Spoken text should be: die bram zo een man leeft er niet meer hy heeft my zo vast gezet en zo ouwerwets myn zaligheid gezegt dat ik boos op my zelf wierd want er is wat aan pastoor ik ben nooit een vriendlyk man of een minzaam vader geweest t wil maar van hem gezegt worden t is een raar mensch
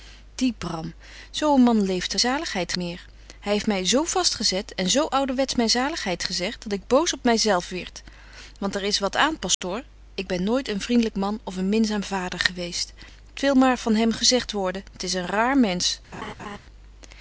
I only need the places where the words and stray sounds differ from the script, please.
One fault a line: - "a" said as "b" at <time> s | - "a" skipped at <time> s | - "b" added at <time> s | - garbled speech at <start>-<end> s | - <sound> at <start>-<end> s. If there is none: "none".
- "niet" said as "zaligheid" at 2.2 s
- dropout at 9.5-9.6 s
- laugh at 16.1-16.6 s